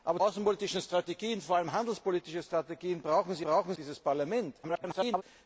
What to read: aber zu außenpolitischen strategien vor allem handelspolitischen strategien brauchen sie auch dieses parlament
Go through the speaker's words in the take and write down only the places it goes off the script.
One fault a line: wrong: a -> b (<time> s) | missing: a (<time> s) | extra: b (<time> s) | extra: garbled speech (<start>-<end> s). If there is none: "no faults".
missing: zu (0.2 s)
wrong: auch -> brauchen (3.4 s)
extra: garbled speech (4.6-5.2 s)